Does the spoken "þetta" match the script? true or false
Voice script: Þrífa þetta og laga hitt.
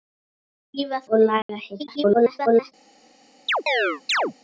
false